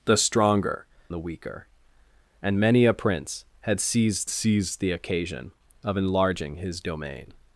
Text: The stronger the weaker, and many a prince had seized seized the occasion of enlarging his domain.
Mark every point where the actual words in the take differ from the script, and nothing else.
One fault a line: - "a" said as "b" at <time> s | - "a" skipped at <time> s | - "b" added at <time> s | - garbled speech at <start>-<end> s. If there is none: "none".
none